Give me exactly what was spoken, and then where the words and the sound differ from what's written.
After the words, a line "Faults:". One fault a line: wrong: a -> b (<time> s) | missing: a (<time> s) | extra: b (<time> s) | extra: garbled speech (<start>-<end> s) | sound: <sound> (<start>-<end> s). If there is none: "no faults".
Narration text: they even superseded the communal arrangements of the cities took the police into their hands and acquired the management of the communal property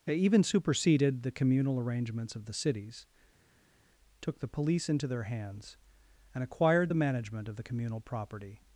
they even superseded the communal arrangements of the cities took the police into their hands and acquired the management of the communal property
Faults:
no faults